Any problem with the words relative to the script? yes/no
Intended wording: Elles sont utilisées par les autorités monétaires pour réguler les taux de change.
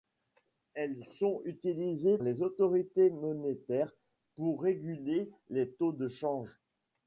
yes